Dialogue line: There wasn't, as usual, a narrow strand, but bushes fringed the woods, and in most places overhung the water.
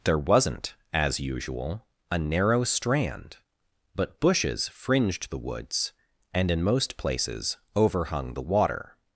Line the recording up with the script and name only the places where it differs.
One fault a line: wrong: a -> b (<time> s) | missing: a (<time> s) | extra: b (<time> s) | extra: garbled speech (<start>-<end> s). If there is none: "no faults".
no faults